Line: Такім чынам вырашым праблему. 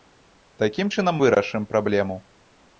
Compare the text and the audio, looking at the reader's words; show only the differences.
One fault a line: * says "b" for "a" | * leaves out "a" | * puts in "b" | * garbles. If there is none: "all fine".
all fine